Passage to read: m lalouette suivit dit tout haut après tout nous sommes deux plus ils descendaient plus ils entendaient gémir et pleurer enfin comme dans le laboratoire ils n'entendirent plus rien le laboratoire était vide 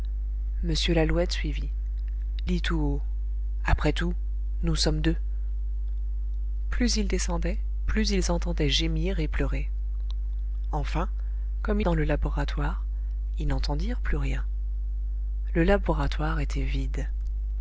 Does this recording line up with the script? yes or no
yes